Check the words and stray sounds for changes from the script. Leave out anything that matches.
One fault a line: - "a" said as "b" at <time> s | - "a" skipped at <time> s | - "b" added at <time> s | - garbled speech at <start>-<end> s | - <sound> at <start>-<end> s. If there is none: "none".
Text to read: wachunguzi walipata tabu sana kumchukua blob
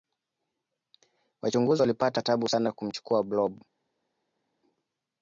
none